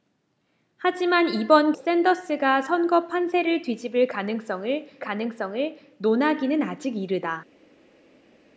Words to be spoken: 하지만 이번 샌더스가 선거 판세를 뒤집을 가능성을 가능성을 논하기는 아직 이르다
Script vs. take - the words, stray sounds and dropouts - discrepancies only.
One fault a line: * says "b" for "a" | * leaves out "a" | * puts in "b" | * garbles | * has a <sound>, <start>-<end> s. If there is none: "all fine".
all fine